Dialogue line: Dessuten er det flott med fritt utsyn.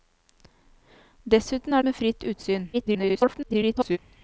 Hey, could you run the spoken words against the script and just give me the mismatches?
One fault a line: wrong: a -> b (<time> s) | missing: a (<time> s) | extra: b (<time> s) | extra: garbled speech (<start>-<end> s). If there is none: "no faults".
missing: det flott (1.8 s)
extra: garbled speech (2.7-4.0 s)